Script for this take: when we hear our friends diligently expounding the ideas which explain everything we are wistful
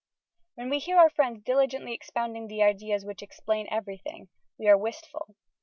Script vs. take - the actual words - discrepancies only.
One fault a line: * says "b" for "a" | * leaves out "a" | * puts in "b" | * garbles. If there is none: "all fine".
all fine